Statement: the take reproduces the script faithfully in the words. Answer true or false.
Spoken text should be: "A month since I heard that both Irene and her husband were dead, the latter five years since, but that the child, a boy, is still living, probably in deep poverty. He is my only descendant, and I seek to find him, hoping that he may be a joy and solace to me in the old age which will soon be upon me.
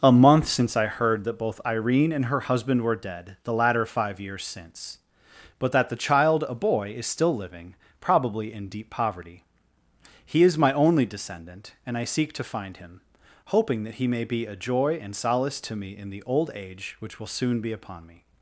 true